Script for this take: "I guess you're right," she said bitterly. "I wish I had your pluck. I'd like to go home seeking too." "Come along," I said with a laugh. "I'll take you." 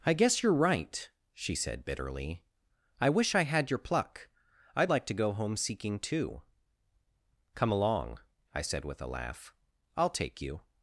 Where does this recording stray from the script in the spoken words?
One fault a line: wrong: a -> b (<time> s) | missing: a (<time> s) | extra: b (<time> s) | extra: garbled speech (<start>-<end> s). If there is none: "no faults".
no faults